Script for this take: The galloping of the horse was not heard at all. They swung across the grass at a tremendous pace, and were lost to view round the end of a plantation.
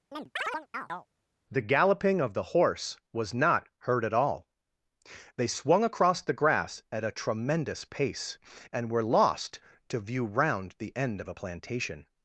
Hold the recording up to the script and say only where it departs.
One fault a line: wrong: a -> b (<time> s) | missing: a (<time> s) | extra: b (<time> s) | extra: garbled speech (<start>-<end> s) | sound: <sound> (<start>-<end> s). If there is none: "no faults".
sound: chirp (0.1-1.1 s)